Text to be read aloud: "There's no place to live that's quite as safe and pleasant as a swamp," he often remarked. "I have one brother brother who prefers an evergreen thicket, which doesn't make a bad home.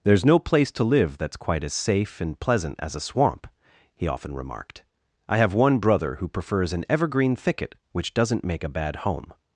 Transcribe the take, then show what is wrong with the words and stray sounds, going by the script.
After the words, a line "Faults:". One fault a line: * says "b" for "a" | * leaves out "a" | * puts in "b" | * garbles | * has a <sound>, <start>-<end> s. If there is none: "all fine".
"There's no place to live that's quite as safe and pleasant as a swamp," he often remarked. "I have one brother who prefers an evergreen thicket, which doesn't make a bad home.
Faults:
* leaves out "brother"